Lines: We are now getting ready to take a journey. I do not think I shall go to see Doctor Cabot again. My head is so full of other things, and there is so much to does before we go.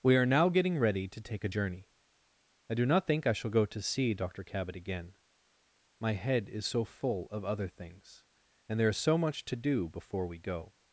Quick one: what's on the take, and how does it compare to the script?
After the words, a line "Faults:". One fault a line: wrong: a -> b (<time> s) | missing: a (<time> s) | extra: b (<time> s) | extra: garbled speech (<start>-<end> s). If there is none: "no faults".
We are now getting ready to take a journey. I do not think I shall go to see Doctor Cabot again. My head is so full of other things, and there is so much to do before we go.
Faults:
wrong: does -> do (9.6 s)